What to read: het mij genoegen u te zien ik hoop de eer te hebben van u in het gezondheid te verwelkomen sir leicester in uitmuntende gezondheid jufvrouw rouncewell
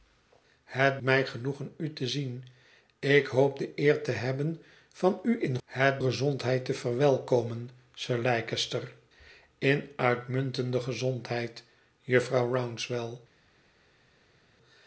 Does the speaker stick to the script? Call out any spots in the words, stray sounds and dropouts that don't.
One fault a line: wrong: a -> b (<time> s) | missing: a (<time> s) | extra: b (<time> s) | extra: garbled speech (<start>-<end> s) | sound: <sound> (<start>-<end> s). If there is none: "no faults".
no faults